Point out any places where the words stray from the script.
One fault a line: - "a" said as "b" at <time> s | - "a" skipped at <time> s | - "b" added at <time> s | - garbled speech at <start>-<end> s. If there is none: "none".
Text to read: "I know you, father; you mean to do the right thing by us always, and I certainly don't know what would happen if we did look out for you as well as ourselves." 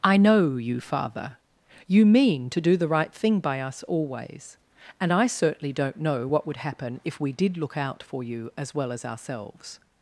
none